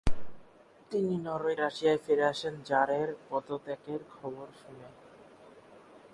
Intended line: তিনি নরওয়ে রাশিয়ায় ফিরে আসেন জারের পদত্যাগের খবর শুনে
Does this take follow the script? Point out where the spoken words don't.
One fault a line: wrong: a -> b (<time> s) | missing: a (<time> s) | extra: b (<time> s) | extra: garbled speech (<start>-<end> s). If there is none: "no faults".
no faults